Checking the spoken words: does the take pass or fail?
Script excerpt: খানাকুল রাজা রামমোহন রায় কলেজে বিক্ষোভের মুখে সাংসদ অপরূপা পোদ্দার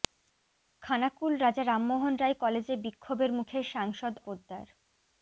fail